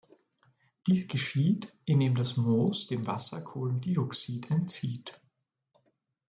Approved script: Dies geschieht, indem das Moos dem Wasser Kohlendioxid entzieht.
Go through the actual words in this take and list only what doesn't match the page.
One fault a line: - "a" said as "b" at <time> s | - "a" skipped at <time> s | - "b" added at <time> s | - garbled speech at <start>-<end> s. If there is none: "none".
none